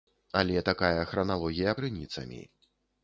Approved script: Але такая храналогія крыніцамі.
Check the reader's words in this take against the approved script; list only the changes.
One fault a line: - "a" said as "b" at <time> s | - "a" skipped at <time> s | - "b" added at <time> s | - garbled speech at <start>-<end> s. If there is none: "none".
none